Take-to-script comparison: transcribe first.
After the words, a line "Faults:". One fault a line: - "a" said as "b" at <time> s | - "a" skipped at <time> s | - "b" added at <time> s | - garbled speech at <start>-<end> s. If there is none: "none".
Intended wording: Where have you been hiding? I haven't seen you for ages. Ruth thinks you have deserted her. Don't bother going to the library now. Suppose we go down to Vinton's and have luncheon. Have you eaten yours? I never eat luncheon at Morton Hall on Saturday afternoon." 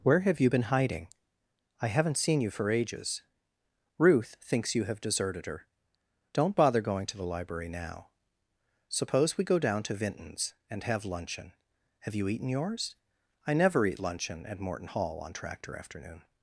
Where have you been hiding? I haven't seen you for ages. Ruth thinks you have deserted her. Don't bother going to the library now. Suppose we go down to Vinton's and have luncheon. Have you eaten yours? I never eat luncheon at Morton Hall on Tractor afternoon."
Faults:
- "Saturday" said as "Tractor" at 15.3 s